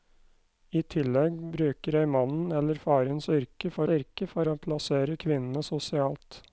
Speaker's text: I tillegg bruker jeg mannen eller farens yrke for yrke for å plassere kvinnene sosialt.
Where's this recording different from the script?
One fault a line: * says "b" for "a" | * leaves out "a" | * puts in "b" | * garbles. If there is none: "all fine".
all fine